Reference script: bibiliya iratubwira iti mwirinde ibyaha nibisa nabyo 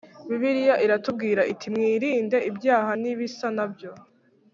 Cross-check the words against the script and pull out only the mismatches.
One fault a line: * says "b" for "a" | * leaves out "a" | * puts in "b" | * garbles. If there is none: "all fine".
all fine